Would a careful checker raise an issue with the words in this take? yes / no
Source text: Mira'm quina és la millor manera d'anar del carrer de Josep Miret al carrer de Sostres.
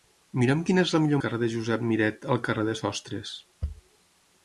yes